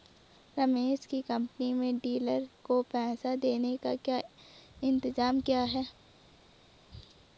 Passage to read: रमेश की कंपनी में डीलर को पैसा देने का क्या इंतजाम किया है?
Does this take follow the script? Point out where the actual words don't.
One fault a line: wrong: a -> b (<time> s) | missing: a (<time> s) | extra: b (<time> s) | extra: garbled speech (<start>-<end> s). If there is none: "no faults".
no faults